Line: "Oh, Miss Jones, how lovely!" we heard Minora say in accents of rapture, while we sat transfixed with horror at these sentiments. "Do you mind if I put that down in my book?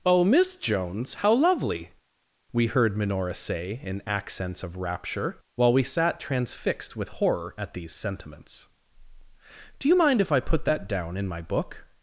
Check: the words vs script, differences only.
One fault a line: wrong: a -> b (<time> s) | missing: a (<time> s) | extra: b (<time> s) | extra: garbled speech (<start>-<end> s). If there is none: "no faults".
no faults